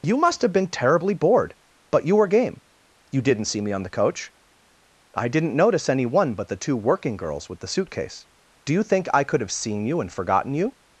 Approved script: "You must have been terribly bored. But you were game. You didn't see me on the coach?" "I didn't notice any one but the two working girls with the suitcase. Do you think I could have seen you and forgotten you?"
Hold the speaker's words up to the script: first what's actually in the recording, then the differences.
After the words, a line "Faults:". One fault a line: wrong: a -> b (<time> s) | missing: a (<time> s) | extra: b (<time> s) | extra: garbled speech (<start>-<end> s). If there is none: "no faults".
"You must have been terribly bored. But you were game. You didn't see me on the coach?" "I didn't notice any one but the two working girls with the suitcase. Do you think I could have seen you and forgotten you?"
Faults:
no faults